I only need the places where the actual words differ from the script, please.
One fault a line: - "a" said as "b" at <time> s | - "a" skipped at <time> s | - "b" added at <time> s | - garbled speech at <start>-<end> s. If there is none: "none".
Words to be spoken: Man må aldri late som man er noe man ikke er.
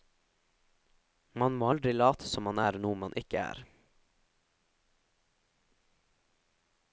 none